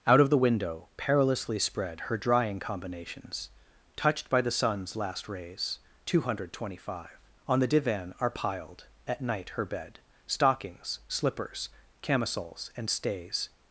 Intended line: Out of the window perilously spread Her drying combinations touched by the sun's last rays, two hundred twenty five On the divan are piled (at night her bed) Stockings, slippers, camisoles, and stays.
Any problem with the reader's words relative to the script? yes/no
no